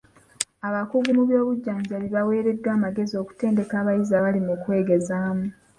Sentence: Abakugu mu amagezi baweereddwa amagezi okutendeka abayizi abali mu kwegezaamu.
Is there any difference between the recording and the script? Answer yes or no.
yes